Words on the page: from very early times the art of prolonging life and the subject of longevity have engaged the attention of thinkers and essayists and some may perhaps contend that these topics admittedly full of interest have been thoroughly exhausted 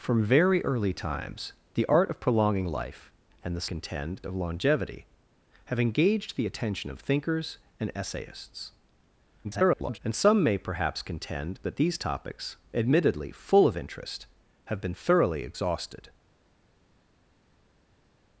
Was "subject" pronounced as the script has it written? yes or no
no